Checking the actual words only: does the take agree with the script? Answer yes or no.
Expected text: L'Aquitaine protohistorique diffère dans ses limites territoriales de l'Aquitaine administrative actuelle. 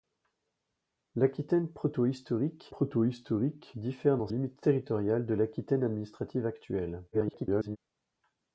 no